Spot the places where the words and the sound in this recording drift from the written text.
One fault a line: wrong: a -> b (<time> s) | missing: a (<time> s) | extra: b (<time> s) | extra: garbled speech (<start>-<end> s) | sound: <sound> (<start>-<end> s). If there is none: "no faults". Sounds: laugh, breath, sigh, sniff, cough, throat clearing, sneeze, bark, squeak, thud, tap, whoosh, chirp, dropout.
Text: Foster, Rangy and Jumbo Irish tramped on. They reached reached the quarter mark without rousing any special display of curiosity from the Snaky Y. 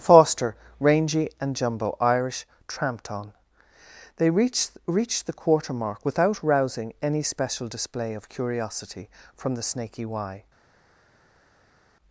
no faults